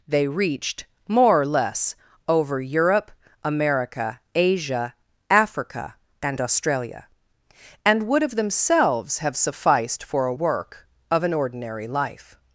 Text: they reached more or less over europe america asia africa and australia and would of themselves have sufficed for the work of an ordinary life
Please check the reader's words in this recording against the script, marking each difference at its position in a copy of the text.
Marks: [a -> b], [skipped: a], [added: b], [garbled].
they reached more or less over europe america asia africa and australia and would of themselves have sufficed for [the -> a] work of an ordinary life